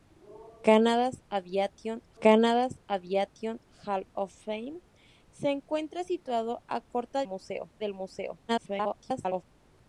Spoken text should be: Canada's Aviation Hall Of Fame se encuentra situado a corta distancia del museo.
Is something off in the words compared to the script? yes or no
yes